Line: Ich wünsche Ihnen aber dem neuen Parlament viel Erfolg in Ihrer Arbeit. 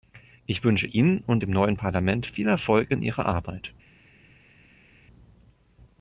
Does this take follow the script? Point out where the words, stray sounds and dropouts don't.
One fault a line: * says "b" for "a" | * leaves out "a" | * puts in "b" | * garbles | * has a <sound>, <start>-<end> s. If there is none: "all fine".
* says "und" for "aber"